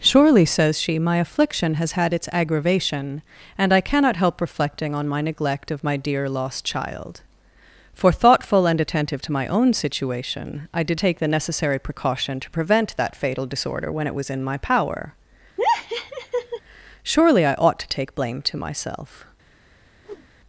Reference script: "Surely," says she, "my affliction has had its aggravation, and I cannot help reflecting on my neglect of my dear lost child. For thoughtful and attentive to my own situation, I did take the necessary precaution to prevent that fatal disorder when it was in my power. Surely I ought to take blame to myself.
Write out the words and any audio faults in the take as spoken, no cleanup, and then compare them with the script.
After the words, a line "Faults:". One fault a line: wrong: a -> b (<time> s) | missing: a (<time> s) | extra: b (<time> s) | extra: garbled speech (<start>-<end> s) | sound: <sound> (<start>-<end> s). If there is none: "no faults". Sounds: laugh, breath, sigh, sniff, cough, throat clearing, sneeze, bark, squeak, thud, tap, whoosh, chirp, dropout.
"Surely," says she, "my affliction has had its aggravation, and I cannot help reflecting on my neglect of my dear lost child. For thoughtful and attentive to my own situation, I did take the necessary precaution to prevent that fatal disorder when it was in my power. Surely I ought to take blame to myself.
Faults:
sound: laugh (15.6-16.6 s)
sound: whoosh (20.0-20.3 s)